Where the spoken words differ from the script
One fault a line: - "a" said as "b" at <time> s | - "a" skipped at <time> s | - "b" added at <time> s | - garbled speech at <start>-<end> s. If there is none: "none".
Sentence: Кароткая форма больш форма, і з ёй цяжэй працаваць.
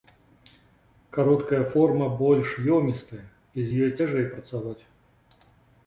- "форма" said as "ёмістая" at 2.8 s